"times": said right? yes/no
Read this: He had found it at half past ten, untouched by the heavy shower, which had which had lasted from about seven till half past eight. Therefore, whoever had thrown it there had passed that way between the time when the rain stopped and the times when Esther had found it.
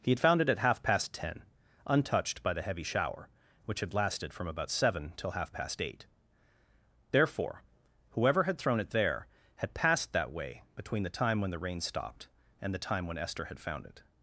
no